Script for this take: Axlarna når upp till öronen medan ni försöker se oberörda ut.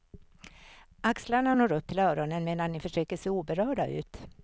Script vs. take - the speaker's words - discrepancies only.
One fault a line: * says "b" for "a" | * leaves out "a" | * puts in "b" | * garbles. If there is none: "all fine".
all fine